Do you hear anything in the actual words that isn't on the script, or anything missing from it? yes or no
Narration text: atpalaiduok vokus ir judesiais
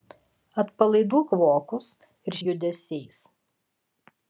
no